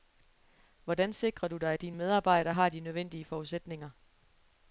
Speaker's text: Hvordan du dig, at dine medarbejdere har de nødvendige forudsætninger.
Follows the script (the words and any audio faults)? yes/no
no